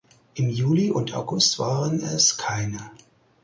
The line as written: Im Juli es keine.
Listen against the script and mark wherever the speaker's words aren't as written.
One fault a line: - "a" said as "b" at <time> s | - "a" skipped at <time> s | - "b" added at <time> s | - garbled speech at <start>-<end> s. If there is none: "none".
- "und August waren" added at 0.9 s